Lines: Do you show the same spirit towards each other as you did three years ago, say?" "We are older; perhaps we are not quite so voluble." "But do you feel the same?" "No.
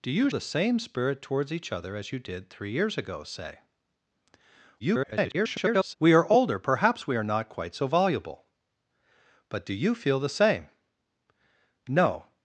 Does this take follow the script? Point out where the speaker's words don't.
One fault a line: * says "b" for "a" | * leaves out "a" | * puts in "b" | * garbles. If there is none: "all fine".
* leaves out "show"
* garbles